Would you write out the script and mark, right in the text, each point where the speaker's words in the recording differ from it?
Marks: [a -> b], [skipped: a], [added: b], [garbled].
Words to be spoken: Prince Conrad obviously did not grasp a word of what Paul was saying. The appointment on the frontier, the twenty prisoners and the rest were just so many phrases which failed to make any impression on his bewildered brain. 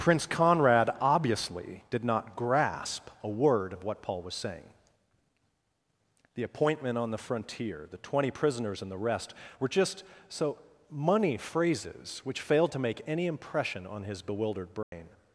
Prince Conrad obviously did not grasp a word of what Paul was saying. The appointment on the frontier, the twenty prisoners and the rest were just so [many -> money] phrases which failed to make any impression on his bewildered brain.